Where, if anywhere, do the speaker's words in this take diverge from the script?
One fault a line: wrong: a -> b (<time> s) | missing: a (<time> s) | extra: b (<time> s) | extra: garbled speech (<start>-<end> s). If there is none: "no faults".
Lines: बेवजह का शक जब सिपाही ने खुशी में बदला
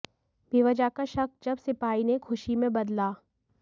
no faults